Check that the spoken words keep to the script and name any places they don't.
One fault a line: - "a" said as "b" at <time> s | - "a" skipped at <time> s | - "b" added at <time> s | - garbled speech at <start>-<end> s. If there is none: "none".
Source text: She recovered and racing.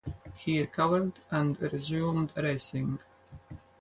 - "She" said as "He" at 0.3 s
- "resumed" added at 1.6 s